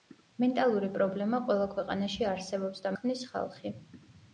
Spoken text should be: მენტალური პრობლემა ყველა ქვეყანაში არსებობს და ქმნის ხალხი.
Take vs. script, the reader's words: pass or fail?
pass